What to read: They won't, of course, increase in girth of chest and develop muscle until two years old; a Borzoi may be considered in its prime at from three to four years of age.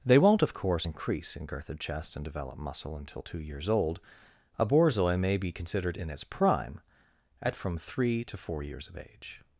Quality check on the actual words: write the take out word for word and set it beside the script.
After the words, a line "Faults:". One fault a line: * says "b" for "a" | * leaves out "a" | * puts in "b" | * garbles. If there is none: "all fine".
They won't, of course, increase in girth of chest and develop muscle until two years old; a Borzoi may be considered in its prime at from three to four years of age.
Faults:
all fine